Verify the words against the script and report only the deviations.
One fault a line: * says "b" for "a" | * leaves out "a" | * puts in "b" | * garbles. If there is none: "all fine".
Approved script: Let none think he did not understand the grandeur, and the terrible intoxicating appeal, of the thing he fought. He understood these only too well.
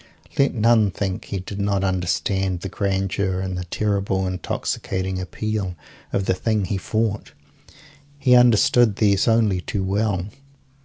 all fine